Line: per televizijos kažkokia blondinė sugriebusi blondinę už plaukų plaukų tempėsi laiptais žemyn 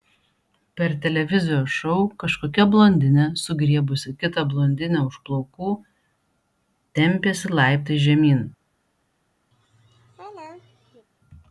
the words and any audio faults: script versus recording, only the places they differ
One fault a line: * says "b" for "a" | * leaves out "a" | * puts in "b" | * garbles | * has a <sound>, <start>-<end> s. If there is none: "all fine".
* puts in "šou"
* puts in "kitą"
* leaves out "plaukų"
* has a laugh, 9.5-11.1 s